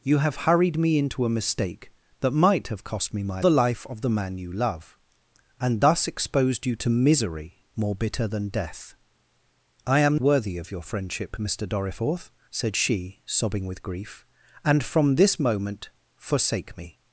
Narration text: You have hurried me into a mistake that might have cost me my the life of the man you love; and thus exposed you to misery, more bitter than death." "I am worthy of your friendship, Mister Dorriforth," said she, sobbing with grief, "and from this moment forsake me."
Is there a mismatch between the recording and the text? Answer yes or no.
no